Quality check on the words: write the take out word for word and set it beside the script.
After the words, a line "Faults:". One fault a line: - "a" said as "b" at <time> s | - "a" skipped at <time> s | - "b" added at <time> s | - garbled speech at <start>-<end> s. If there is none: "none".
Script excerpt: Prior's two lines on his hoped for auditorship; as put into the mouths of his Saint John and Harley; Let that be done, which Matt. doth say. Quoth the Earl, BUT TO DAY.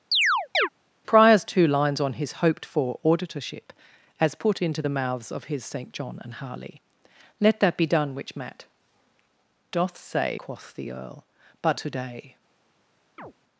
Prior's two lines on his hoped for auditorship; as put into the mouths of his Saint John and Harley; Let that be done, which Matt. doth say. Quoth the Earl, BUT TO DAY.
Faults:
none